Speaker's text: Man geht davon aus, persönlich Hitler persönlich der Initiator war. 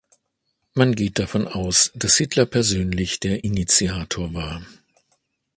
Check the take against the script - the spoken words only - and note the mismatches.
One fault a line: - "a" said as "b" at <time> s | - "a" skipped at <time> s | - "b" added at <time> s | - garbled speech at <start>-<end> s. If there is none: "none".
- "persönlich" said as "dass" at 1.9 s